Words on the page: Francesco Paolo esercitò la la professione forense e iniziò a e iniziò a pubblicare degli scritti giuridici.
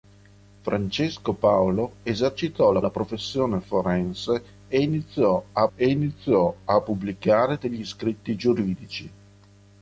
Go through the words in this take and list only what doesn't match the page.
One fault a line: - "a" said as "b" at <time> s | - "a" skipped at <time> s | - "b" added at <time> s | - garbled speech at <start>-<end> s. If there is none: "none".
none